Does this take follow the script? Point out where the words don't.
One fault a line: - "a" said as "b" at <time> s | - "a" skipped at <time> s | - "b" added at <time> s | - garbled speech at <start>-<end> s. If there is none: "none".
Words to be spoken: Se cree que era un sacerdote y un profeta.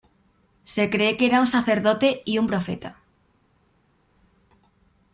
none